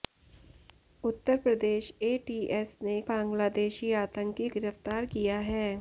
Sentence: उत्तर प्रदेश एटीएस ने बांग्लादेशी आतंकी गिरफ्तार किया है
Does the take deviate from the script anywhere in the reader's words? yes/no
no